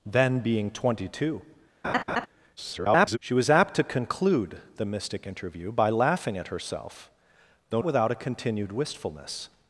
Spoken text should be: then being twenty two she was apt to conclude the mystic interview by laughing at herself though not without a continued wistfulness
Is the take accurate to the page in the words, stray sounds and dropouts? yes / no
no